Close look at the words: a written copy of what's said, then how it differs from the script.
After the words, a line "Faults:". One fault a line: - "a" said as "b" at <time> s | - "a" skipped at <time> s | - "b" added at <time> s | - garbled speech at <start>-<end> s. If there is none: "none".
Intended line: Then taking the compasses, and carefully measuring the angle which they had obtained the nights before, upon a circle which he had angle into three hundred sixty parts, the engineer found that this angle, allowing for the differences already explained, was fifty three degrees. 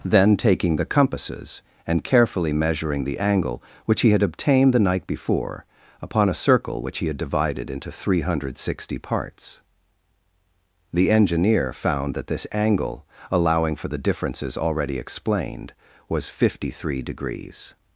Then taking the compasses, and carefully measuring the angle which he had obtained the night before, upon a circle which he had divided into three hundred sixty parts, the engineer found that this angle, allowing for the differences already explained, was fifty three degrees.
Faults:
- "they" said as "he" at 4.0 s
- "nights" said as "night" at 4.8 s
- "angle" said as "divided" at 7.2 s